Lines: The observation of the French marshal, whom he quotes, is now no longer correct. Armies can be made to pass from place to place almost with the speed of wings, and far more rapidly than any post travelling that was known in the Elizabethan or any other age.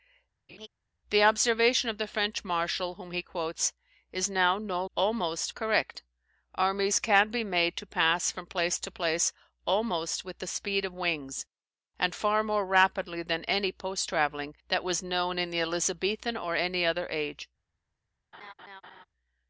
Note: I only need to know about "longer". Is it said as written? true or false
false